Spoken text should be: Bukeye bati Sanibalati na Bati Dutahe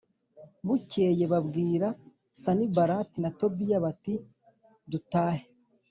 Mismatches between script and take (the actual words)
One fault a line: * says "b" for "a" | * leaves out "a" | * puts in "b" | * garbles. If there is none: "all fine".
* says "babwira" for "bati"
* puts in "Tobiya"